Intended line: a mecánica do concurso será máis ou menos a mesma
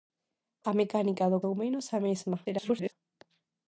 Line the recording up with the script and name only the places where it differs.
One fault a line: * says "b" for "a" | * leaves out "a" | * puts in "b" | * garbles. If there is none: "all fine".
* leaves out "concurso será máis"
* garbles